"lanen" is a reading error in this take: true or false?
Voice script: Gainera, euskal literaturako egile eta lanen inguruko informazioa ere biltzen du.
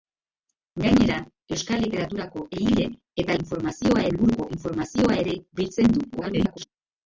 true